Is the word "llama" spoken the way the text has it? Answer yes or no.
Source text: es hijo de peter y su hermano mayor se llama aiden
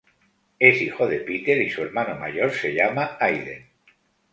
yes